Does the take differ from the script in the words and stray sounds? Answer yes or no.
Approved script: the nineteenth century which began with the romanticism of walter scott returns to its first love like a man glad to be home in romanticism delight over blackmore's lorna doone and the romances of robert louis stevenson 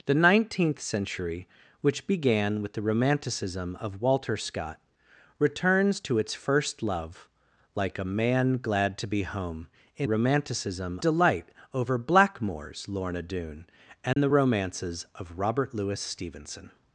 yes